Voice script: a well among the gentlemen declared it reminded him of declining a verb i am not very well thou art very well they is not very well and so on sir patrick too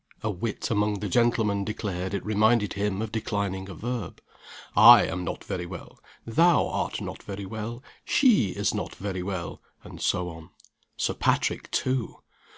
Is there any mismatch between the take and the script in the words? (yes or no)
yes